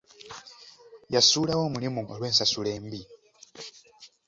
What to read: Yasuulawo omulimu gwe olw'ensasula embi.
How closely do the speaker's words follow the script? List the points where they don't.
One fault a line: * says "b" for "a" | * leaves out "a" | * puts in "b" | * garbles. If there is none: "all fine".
* leaves out "gwe"